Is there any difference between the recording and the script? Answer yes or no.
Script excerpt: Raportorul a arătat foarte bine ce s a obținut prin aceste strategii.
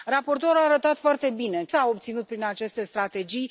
yes